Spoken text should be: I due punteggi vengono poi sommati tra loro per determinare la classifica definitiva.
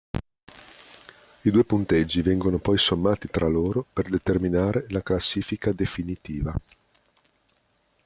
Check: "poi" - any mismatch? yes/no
no